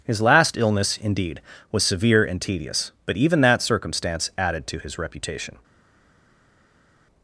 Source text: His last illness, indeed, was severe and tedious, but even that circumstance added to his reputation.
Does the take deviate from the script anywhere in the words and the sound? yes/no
no